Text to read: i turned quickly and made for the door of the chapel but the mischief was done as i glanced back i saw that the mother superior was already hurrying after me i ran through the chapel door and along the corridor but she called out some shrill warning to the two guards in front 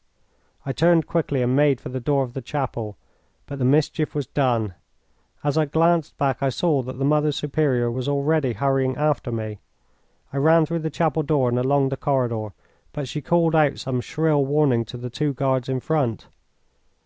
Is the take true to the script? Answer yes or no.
yes